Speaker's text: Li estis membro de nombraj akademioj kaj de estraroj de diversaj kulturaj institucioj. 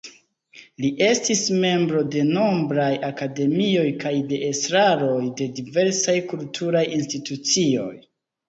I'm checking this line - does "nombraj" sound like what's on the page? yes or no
yes